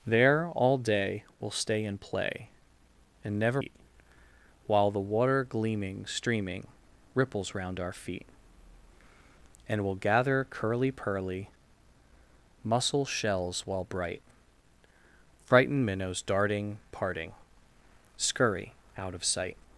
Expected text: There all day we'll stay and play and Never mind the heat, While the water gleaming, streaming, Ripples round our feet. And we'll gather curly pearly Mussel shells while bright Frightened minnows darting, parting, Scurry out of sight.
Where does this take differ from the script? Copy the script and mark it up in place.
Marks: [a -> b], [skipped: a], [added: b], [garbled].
There all day we'll stay and play and Never [skipped: mind the] heat, While the water gleaming, streaming, Ripples round our feet. And we'll gather curly pearly Mussel shells while bright Frightened minnows darting, parting, Scurry out of sight.